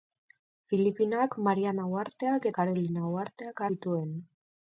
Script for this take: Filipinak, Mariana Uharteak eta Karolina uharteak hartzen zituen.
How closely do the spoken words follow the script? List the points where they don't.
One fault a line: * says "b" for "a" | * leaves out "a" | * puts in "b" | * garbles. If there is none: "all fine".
* leaves out "eta"
* leaves out "hartzen"